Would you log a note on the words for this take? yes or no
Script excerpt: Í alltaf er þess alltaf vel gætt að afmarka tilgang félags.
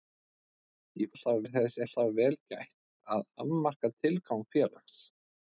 no